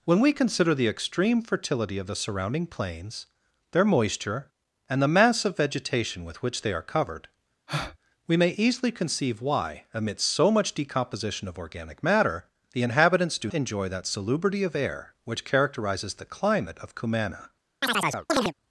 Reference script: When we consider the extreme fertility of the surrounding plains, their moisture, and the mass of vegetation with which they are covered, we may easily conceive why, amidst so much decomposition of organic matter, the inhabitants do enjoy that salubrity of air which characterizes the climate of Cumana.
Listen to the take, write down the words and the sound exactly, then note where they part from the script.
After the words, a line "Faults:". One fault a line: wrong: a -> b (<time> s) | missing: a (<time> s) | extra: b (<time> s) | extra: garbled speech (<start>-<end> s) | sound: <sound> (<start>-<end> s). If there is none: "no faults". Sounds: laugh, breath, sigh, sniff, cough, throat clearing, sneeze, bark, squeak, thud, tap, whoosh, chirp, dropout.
When we consider the extreme fertility of the surrounding plains, their moisture, and the mass of vegetation with which they are covered, we may easily conceive why, amidst so much decomposition of organic matter, the inhabitants do enjoy that salubrity of air which characterizes the climate of Cumana.
Faults:
sound: breath (7.7-8.0 s)
sound: chirp (17.8-18.5 s)